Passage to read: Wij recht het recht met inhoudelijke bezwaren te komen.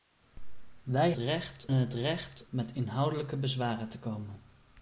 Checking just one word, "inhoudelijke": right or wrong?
right